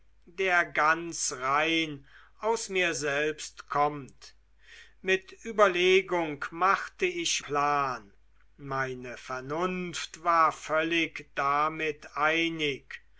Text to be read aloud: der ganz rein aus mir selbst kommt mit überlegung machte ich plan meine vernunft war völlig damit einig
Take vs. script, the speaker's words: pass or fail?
pass